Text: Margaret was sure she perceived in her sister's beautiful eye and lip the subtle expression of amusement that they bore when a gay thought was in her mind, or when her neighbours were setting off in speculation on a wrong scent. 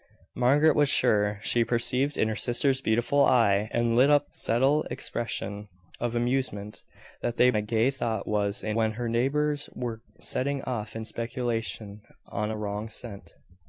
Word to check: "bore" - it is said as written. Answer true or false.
false